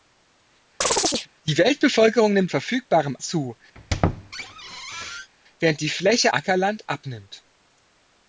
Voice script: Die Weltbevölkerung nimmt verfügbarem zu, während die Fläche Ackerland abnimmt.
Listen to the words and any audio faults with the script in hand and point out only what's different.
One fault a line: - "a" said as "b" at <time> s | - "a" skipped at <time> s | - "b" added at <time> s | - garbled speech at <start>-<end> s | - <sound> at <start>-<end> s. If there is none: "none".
- chirp at 0.8-1.3 s
- squeak at 3.7-5.3 s